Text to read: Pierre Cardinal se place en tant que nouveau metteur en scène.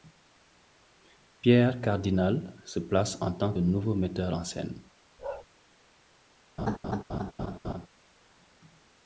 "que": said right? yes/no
no